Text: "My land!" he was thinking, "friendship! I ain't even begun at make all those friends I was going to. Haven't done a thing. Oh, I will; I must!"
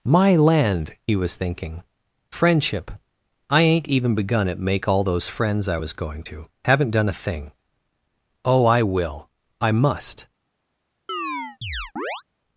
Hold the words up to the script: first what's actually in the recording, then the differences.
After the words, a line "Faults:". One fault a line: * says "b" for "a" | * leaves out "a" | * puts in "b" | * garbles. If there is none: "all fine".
"My land!" he was thinking, "friendship! I ain't even begun at make all those friends I was going to. Haven't done a thing. Oh, I will; I must!"
Faults:
all fine